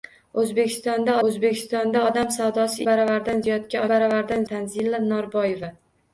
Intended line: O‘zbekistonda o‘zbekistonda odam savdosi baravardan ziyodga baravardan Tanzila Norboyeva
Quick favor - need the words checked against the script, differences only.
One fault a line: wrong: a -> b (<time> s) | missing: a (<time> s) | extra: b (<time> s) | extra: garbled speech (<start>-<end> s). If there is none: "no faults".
no faults